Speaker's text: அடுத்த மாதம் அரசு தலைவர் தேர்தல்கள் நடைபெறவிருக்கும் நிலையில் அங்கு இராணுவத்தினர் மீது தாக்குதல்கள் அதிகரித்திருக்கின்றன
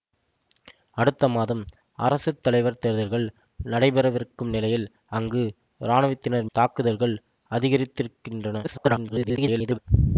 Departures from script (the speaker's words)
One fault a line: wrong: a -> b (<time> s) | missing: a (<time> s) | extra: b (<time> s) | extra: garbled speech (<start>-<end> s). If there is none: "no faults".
missing: மீது (6.5 s)
extra: garbled speech (8.6-9.8 s)